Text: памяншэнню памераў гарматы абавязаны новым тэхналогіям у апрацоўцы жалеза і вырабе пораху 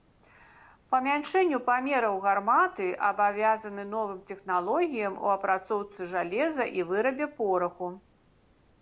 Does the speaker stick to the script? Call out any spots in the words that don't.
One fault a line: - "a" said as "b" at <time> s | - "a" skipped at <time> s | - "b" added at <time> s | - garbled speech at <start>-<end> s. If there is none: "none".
none